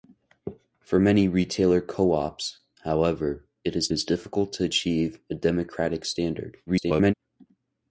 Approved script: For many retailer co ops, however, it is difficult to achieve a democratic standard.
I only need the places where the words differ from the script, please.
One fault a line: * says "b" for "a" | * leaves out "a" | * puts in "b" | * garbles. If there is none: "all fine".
* puts in "is"
* garbles